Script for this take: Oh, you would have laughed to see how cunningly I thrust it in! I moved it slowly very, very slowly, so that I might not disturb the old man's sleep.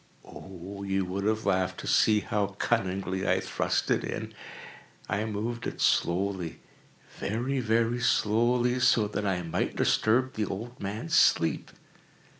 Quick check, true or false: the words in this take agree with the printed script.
false